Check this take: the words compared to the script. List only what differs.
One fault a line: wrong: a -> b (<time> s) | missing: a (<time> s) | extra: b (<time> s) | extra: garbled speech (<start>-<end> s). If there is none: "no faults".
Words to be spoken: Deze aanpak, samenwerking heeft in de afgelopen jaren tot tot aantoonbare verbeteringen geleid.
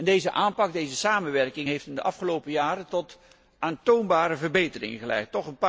extra: deze (0.7 s)
missing: tot (3.2 s)